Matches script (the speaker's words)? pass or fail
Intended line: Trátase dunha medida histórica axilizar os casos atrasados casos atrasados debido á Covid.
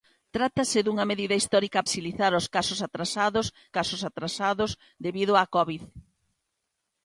pass